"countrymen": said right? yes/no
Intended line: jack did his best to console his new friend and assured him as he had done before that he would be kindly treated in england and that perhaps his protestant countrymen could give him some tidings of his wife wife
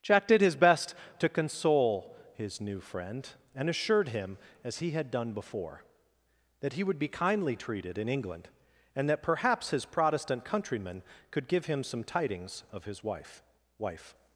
yes